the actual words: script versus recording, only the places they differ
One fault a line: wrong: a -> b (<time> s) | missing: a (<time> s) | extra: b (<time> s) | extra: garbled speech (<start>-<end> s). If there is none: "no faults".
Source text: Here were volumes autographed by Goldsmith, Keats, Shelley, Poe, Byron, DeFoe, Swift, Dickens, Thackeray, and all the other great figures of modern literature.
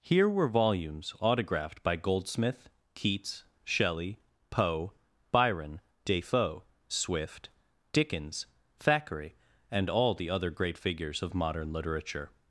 no faults